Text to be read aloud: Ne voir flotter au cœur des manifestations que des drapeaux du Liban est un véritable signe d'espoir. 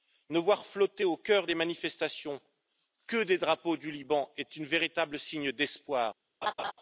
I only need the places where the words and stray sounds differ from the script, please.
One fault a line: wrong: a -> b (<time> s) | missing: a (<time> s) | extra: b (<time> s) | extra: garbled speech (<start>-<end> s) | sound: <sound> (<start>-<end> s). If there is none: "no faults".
sound: laugh (6.4-6.7 s)